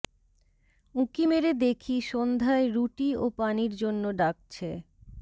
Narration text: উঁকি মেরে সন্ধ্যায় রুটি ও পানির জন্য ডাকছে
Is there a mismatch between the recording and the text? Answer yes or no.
yes